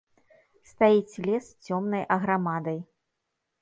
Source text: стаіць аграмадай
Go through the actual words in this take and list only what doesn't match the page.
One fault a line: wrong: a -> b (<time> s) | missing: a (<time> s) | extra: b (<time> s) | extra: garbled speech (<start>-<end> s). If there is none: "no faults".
extra: лес цёмнай (1.3 s)